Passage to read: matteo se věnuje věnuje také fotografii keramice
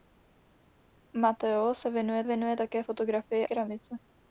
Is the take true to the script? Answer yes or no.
yes